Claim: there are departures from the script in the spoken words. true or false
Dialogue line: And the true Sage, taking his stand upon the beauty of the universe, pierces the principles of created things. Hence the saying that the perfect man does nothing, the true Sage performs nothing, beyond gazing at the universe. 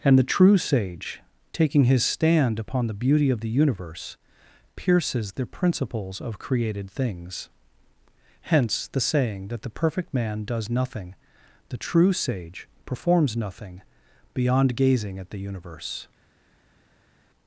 false